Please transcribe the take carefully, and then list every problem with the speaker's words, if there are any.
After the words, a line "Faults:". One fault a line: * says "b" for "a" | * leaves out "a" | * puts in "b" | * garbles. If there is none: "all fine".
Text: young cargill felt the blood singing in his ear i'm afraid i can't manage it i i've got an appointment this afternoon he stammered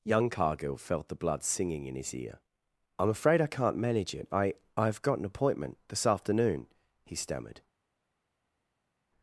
young cargill felt the blood singing in his ear i'm afraid i can't manage it i i've got an appointment this afternoon he stammered
Faults:
all fine